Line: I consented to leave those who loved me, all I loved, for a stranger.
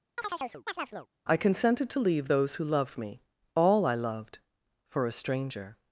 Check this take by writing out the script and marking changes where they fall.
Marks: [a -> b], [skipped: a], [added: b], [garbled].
I consented to leave those who loved me, all I loved, for a stranger.